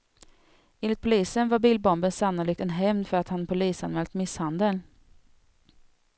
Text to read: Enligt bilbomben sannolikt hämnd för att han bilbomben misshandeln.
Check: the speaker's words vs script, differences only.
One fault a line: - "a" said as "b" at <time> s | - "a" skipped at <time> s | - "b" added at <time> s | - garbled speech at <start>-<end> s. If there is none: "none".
- "polisen var" added at 1.0 s
- "en" added at 2.6 s
- "bilbomben" said as "polisanmält" at 3.5 s